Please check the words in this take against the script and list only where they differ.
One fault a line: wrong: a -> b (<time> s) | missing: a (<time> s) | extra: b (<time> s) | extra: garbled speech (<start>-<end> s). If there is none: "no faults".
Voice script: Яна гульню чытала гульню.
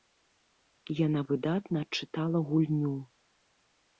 wrong: гульню -> выдатна (1.3 s)